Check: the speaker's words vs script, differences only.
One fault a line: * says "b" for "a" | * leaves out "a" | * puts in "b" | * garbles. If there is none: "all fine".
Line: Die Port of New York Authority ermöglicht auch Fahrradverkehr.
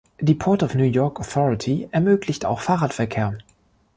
all fine